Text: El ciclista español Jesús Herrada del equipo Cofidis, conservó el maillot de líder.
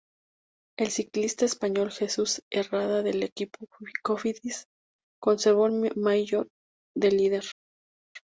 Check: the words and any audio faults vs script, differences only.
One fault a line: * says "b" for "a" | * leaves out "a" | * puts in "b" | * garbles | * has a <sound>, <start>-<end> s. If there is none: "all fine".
all fine